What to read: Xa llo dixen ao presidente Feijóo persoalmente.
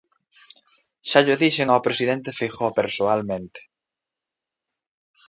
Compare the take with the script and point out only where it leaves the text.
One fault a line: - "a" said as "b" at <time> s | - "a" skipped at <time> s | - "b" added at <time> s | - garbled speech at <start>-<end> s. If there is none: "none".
none